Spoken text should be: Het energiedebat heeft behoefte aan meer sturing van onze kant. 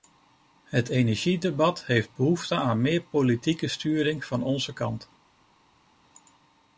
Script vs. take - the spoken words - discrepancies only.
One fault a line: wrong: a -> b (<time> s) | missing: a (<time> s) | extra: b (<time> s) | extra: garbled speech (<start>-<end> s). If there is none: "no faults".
extra: politieke (3.0 s)